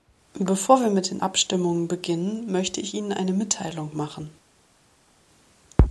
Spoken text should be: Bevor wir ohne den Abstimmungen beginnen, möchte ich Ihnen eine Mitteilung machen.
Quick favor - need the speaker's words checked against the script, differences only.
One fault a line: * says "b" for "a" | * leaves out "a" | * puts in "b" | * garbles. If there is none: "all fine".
* says "mit" for "ohne"